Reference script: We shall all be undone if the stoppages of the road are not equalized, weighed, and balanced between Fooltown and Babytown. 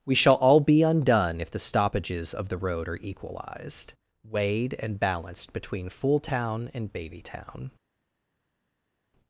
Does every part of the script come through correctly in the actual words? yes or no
no